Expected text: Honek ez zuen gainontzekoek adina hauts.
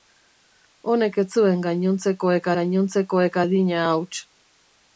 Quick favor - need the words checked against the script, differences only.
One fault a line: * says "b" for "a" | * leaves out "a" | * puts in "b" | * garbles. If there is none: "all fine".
* puts in "gainontzekoek"